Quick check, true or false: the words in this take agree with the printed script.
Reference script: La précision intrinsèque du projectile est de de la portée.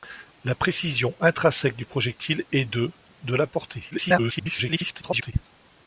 false